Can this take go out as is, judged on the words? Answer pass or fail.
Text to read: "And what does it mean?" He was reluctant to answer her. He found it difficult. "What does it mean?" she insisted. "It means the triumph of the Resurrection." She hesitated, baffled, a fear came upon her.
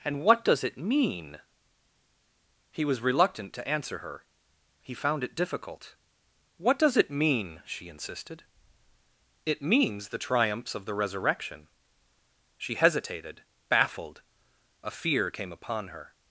fail